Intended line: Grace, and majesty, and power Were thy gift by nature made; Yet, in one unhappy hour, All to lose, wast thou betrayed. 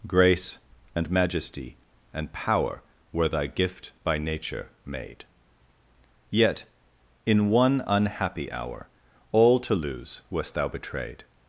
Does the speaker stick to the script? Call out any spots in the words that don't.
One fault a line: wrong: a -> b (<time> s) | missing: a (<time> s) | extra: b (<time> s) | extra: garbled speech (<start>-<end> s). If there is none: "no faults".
no faults